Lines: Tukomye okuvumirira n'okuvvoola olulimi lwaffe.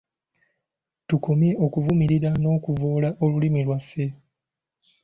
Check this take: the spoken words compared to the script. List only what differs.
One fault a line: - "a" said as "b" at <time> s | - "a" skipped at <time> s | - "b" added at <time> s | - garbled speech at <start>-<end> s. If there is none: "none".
none